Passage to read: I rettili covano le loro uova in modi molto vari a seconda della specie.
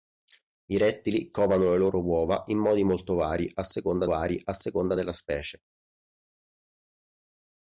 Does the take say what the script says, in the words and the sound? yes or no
no